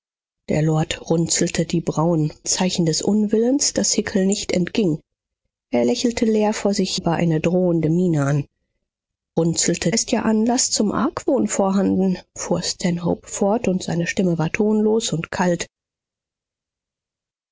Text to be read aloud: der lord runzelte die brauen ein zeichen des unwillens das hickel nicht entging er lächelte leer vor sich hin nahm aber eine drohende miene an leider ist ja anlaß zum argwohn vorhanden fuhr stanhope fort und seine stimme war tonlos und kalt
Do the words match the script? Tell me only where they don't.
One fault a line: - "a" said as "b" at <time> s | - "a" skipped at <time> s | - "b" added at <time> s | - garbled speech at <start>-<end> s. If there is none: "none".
- "ein" skipped at 2.3 s
- "hin nahm" skipped at 6.9 s
- "leider" said as "runzelte" at 9.4 s